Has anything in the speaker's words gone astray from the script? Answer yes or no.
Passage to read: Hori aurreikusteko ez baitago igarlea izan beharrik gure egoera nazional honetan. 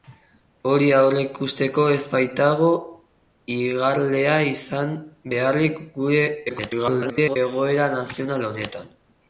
yes